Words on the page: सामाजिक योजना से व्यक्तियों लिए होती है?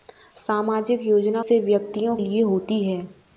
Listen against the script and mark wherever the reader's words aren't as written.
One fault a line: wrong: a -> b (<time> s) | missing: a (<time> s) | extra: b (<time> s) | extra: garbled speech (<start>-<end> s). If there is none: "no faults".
no faults